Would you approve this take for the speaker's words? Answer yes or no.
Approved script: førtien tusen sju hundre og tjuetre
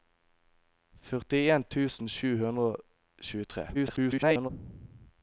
no